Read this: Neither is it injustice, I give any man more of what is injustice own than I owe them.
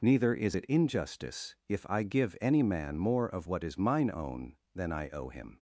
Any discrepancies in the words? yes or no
yes